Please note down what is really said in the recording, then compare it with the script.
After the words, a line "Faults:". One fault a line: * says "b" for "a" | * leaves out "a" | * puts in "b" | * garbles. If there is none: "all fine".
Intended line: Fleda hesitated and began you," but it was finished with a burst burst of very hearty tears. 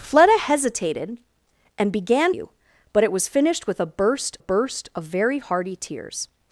Fleda hesitated and began you," but it was finished with a burst burst of very hearty tears.
Faults:
all fine